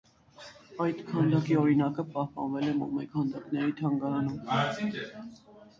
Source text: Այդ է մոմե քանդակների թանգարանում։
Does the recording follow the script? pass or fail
fail